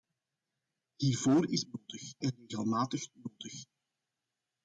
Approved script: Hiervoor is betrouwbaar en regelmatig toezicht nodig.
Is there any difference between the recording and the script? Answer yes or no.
yes